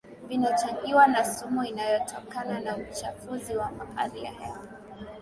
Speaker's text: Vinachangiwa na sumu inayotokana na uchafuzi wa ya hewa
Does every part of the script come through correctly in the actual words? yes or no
no